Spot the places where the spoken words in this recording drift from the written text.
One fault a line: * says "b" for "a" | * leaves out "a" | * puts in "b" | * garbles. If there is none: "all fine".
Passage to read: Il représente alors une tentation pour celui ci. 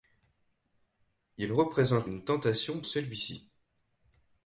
* leaves out "alors"
* leaves out "pour"